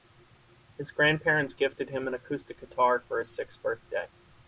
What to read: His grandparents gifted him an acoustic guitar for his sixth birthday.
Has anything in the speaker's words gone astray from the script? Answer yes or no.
no